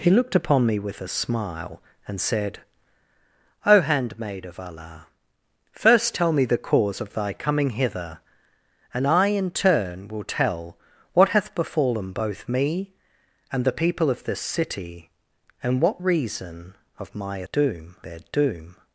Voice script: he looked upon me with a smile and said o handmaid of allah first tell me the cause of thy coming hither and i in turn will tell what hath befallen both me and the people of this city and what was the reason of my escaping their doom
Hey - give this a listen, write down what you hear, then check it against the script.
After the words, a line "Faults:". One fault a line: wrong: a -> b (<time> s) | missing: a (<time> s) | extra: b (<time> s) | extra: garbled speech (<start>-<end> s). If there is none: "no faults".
he looked upon me with a smile and said o handmaid of allah first tell me the cause of thy coming hither and i in turn will tell what hath befallen both me and the people of this city and what reason of my doom their doom
Faults:
missing: was the (16.0 s)
wrong: escaping -> doom (17.5 s)